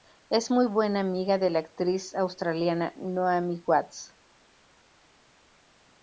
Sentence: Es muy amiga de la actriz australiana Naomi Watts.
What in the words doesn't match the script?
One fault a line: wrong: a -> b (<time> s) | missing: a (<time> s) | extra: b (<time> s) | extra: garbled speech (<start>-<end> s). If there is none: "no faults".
extra: buena (0.7 s)